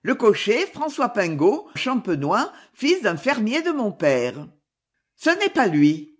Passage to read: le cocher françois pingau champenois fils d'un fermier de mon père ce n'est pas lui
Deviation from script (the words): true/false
false